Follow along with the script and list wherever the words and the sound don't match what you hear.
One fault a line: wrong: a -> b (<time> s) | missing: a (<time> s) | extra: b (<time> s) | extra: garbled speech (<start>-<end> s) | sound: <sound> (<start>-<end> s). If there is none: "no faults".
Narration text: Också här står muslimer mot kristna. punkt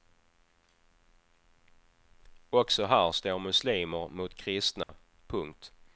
sound: dropout (4.8-4.9 s)